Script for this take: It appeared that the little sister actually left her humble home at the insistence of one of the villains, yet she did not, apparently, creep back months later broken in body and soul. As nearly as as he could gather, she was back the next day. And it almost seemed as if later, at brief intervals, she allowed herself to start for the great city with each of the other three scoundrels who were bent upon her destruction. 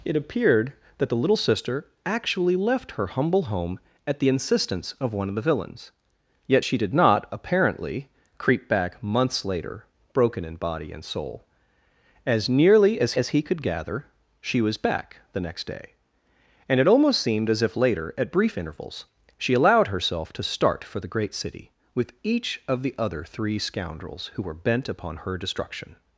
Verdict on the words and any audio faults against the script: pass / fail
pass